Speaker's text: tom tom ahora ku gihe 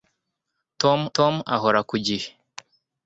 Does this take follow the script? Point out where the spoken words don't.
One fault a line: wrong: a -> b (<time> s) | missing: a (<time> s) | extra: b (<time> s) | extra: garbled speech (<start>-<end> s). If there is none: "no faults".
no faults